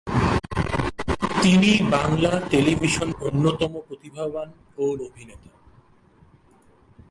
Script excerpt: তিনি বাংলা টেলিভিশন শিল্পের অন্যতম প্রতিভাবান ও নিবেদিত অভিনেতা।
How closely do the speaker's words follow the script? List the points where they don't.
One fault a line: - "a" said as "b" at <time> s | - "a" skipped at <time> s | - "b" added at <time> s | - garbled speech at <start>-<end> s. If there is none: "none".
- "শিল্পের" skipped at 3.1 s
- "নিবেদিত" skipped at 4.8 s